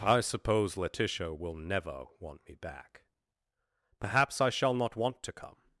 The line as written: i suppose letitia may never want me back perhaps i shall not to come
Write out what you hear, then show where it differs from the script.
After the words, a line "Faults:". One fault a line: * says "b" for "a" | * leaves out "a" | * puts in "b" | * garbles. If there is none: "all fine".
i suppose letitia will never want me back perhaps i shall not want to come
Faults:
* says "will" for "may"
* puts in "want"